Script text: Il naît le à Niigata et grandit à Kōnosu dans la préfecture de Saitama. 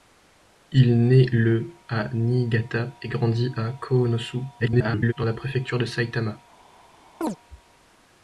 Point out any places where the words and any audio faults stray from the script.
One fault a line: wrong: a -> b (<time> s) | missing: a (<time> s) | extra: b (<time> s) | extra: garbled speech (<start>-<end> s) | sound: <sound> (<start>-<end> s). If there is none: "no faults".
extra: garbled speech (4.6-5.1 s)
sound: chirp (7.2-7.4 s)